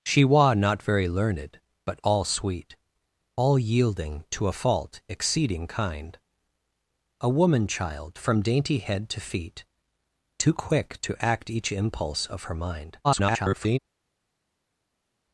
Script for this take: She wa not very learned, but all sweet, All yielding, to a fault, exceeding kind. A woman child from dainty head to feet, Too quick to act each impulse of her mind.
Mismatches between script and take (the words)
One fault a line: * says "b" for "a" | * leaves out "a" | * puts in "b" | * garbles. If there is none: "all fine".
* garbles